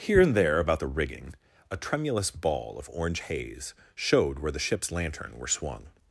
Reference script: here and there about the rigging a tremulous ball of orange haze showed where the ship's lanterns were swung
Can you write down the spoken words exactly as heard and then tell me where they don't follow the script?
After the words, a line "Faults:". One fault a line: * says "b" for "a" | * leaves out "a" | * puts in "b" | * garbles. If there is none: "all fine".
here and there about the rigging a tremulous ball of orange haze showed where the ship's lantern were swung
Faults:
* says "lantern" for "lanterns"